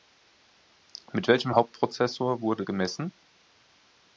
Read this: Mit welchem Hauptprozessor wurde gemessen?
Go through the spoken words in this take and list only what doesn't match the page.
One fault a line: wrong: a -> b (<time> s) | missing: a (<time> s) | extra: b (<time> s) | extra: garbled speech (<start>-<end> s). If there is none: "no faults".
no faults